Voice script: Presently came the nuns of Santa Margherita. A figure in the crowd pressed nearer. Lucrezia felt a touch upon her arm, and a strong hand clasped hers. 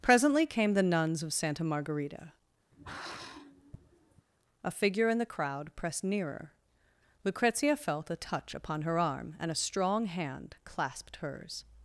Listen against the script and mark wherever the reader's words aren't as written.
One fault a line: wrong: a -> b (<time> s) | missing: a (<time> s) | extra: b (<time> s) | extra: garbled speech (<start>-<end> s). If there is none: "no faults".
no faults